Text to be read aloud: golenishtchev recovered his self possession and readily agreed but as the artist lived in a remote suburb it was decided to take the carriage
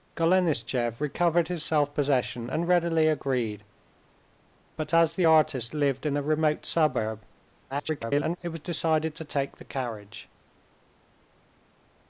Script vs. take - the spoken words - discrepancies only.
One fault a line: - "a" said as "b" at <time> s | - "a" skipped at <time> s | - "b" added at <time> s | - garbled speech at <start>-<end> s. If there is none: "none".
- garbled speech at 7.7-8.4 s